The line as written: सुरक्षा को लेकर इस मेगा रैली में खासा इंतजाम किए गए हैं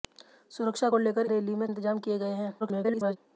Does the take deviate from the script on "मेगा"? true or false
true